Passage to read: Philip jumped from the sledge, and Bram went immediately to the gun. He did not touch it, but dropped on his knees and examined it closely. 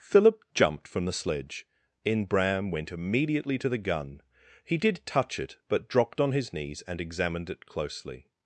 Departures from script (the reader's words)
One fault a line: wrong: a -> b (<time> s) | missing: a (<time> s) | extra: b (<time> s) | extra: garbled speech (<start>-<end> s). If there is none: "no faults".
wrong: and -> in (2.0 s)
missing: not (5.0 s)